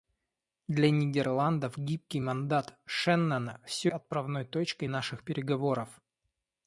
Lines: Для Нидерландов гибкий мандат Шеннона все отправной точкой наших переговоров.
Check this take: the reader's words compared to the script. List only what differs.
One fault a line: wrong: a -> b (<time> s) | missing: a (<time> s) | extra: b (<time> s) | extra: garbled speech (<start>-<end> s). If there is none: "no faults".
no faults